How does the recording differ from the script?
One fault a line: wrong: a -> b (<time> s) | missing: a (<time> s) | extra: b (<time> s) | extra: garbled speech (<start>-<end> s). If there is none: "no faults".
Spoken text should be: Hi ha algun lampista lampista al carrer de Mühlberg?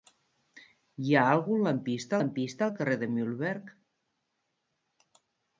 no faults